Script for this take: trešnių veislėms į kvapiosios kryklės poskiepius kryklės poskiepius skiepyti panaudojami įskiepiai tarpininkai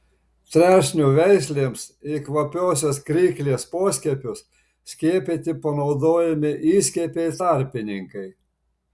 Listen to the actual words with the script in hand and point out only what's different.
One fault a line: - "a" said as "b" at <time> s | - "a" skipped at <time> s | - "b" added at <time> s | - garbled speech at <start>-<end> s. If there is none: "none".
- "kryklės poskiepius" skipped at 4.4 s